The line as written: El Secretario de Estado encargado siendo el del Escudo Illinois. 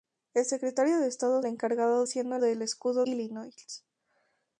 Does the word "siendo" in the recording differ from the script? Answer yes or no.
no